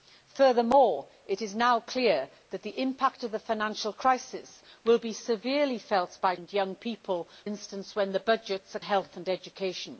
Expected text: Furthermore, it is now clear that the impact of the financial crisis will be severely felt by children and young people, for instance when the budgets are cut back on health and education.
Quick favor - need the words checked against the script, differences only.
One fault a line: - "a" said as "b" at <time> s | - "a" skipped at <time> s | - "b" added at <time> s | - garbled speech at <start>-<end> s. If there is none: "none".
- "children" skipped at 6.3 s
- "for" skipped at 7.3 s
- "cut back on" skipped at 8.8 s